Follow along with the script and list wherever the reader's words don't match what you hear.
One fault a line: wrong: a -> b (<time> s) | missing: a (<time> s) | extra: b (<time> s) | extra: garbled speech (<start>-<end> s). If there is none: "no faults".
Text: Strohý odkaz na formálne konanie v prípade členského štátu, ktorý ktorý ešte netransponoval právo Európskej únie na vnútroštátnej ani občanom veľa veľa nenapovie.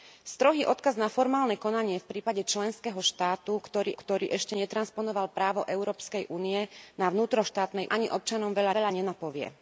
no faults